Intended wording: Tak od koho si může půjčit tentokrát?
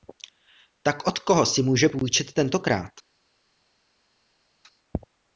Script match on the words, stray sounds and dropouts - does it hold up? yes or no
yes